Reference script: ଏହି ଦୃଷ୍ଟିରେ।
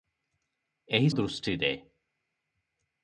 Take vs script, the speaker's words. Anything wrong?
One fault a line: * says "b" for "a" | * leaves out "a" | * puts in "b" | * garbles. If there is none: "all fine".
all fine